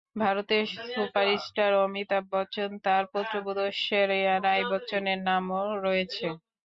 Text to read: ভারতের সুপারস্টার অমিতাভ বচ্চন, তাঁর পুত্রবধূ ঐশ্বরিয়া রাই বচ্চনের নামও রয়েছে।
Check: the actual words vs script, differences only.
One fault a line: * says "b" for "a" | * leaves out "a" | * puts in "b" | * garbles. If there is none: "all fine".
all fine